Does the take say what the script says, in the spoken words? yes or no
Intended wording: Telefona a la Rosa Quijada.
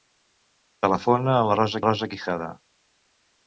no